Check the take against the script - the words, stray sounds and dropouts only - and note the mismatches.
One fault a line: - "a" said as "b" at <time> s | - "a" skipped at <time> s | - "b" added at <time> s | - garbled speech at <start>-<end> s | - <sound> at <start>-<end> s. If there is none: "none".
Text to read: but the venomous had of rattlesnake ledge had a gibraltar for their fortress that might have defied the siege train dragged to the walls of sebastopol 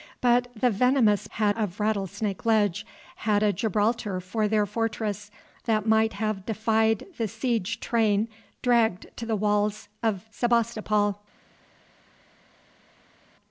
none